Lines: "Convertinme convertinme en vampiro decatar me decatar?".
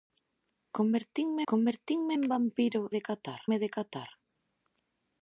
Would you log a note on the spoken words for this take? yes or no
no